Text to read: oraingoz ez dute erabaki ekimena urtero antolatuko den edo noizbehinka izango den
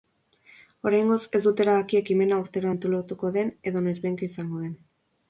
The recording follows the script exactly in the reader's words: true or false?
true